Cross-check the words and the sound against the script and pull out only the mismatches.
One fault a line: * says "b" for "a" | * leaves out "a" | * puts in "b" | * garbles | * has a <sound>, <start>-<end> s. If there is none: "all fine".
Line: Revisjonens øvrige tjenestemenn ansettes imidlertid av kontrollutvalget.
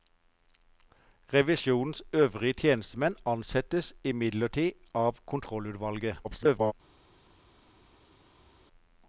* garbles